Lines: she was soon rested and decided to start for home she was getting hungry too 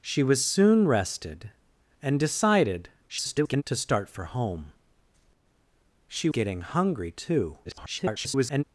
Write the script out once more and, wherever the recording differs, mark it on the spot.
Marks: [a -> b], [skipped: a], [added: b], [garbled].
she was soon rested and decided [garbled] to start for home she [skipped: was] getting hungry too [garbled]